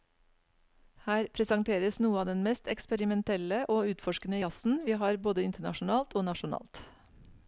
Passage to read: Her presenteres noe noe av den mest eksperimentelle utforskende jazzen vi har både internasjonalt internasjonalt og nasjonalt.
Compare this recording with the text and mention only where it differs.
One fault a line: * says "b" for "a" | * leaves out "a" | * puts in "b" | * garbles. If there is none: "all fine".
* leaves out "noe"
* puts in "og"
* leaves out "internasjonalt"